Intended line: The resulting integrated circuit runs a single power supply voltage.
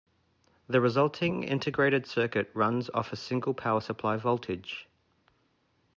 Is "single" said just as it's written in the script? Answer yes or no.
yes